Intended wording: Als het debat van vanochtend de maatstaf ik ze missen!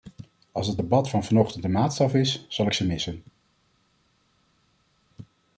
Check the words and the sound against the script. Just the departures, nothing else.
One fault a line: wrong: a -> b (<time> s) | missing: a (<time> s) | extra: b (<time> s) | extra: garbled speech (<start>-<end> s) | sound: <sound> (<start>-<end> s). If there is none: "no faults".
extra: is zal (2.1 s)